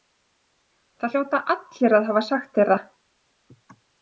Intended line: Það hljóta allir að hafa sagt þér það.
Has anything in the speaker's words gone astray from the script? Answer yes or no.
no